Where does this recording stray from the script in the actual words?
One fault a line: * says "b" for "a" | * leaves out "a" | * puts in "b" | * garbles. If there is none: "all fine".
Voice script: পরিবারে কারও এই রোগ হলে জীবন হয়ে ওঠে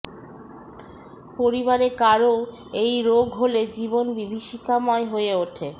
* puts in "বিভীষিকাময়"